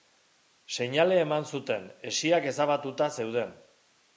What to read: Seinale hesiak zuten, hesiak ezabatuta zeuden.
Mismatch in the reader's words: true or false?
true